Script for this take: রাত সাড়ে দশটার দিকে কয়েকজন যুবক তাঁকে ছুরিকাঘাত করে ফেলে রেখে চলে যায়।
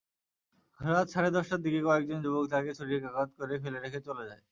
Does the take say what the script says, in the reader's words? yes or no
yes